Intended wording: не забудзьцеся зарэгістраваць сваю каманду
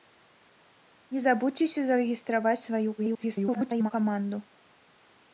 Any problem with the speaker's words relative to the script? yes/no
yes